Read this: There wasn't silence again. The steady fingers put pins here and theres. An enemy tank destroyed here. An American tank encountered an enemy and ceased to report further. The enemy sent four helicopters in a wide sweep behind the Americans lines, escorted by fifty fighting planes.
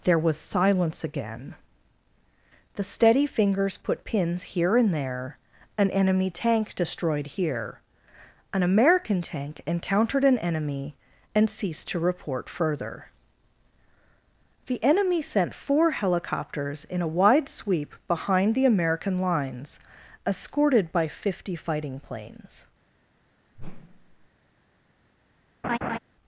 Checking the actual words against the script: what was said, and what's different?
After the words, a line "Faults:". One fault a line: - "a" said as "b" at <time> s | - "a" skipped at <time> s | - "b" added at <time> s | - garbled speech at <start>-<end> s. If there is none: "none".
There was silence again. The steady fingers put pins here and there. An enemy tank destroyed here. An American tank encountered an enemy and ceased to report further. The enemy sent four helicopters in a wide sweep behind the American lines, escorted by fifty fighting planes.
Faults:
- "wasn't" said as "was" at 0.2 s
- "theres" said as "there" at 4.9 s
- "Americans" said as "American" at 18.6 s